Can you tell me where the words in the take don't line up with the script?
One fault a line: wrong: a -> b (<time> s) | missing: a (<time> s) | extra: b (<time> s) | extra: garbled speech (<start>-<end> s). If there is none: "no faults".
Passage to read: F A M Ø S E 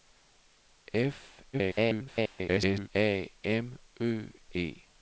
extra: garbled speech (1.5-2.9 s)
missing: S (4.3 s)